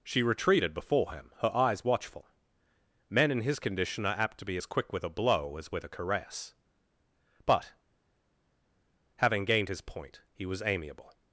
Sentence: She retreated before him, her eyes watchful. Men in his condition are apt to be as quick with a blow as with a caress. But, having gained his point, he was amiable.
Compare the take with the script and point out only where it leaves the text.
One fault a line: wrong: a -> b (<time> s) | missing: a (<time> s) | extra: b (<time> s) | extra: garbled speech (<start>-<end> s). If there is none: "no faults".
no faults